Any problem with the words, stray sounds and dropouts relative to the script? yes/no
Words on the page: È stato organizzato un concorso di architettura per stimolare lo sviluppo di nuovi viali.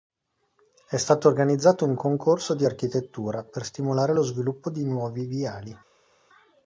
no